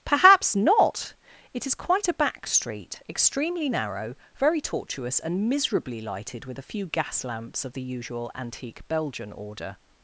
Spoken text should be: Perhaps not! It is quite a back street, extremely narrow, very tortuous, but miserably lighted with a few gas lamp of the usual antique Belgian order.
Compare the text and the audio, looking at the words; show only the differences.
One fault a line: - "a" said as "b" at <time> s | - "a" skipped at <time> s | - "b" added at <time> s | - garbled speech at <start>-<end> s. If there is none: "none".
- "but" said as "and" at 5.2 s
- "lamp" said as "lamps" at 7.2 s